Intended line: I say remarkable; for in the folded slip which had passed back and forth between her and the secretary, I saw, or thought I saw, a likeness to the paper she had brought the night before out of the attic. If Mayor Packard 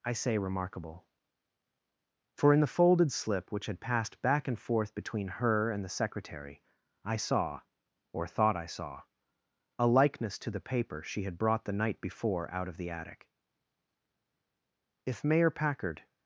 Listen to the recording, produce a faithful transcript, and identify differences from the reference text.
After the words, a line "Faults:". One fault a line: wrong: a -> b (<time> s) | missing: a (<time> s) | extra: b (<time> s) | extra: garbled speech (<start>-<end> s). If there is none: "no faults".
I say remarkable; for in the folded slip which had passed back and forth between her and the secretary, I saw, or thought I saw, a likeness to the paper she had brought the night before out of the attic. If Mayor Packard
Faults:
no faults